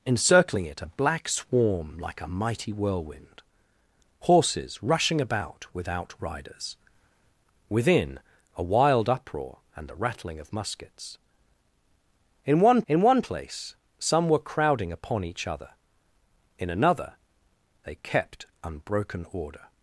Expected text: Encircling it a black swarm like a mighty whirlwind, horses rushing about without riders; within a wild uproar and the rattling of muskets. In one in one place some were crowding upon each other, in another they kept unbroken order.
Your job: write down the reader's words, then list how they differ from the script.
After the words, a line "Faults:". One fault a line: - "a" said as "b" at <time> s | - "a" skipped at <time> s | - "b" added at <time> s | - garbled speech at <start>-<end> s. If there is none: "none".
Encircling it a black swarm like a mighty whirlwind, horses rushing about without riders; within a wild uproar and the rattling of muskets. In one in one place some were crowding upon each other, in another they kept unbroken order.
Faults:
none